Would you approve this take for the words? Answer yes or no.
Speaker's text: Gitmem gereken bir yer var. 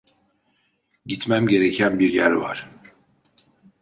yes